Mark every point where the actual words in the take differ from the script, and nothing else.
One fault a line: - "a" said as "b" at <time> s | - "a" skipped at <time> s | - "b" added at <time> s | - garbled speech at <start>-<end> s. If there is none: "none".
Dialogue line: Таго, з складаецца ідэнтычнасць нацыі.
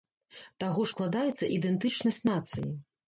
none